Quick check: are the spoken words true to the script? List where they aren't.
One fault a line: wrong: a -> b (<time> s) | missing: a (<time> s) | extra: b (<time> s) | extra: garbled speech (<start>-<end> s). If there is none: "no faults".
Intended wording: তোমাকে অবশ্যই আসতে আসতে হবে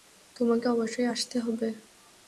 missing: আসতে (1.4 s)